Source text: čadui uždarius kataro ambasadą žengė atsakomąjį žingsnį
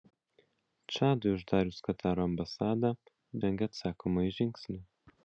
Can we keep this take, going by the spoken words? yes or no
yes